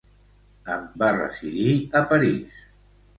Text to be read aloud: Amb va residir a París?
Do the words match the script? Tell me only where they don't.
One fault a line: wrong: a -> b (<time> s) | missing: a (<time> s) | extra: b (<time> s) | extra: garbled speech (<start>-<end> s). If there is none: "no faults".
no faults